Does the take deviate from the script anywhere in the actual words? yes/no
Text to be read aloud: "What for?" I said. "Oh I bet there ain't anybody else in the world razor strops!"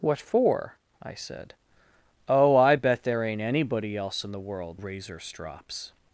no